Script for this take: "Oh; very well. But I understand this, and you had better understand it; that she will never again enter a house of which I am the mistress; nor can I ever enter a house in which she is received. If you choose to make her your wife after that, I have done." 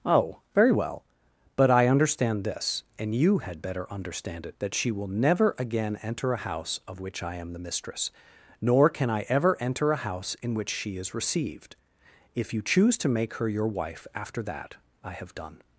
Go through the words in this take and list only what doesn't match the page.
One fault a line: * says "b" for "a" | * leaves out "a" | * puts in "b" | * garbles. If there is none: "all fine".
all fine